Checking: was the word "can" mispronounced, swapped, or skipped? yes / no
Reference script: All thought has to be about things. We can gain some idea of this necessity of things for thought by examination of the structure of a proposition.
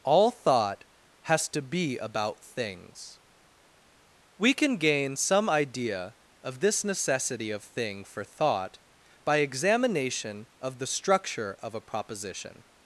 no